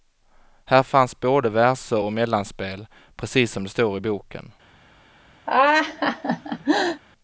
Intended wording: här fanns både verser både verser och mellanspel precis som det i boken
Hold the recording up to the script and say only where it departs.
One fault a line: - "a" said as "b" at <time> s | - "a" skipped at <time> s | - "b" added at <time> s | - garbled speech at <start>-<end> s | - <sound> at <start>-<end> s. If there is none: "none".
- "både verser" skipped at 2.0 s
- "står" added at 3.7 s
- laugh at 5.5-7.0 s